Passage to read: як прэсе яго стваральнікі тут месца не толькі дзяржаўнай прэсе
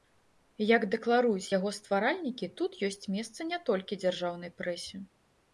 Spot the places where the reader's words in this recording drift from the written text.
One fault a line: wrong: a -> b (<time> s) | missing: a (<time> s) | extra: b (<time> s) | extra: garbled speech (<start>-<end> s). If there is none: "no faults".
wrong: прэсе -> дэкларуюць (0.9 s)
extra: ёсць (2.9 s)